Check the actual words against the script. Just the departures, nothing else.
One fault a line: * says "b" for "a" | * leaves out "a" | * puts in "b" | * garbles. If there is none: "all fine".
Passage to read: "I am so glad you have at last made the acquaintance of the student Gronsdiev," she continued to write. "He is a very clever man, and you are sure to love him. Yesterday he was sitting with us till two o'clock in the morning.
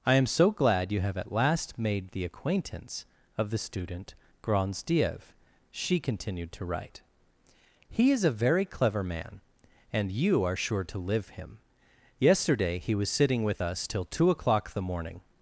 * says "live" for "love"
* leaves out "in"